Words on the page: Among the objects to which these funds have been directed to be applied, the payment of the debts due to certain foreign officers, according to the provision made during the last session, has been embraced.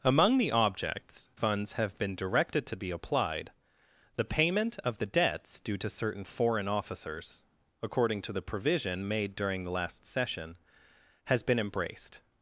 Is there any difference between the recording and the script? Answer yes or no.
yes